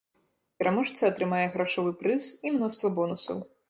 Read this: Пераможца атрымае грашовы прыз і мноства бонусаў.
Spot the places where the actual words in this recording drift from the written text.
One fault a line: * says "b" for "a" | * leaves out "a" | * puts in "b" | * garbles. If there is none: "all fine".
all fine